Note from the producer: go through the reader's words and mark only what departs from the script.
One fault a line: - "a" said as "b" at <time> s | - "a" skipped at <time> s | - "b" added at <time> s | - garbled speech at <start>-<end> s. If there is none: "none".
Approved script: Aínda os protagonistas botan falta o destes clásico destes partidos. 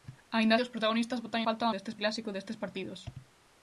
none